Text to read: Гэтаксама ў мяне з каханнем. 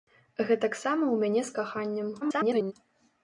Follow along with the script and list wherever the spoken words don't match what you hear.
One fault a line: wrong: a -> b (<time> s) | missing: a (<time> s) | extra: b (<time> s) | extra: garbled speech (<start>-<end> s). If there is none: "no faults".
extra: garbled speech (2.2-2.7 s)